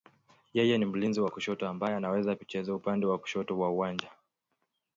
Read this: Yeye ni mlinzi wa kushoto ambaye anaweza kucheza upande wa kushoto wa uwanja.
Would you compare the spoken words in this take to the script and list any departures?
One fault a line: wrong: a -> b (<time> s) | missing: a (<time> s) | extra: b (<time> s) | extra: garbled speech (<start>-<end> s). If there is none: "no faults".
no faults